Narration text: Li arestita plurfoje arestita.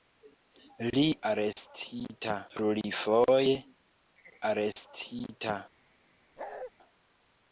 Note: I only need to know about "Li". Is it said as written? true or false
true